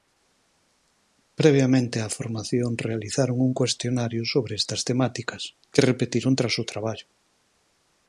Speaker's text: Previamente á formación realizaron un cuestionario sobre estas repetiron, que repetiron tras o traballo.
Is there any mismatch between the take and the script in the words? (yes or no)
yes